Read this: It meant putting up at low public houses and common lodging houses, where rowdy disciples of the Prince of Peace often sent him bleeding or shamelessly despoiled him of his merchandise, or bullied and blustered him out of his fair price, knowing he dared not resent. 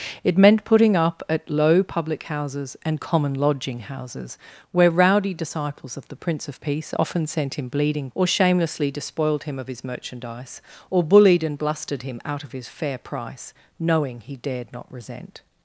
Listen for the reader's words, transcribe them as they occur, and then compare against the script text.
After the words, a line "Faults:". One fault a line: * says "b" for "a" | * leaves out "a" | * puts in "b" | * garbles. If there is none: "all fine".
It meant putting up at low public houses and common lodging houses, where rowdy disciples of the Prince of Peace often sent him bleeding or shamelessly despoiled him of his merchandise, or bullied and blustered him out of his fair price, knowing he dared not resent.
Faults:
all fine